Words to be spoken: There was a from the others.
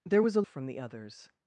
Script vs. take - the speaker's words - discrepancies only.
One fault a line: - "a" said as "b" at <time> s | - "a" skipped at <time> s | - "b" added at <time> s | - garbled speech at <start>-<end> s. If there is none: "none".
none